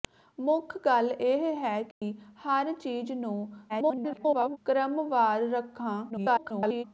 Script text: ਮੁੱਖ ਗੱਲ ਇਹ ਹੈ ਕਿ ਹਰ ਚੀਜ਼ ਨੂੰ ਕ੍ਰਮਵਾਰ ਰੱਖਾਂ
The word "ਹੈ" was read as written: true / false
true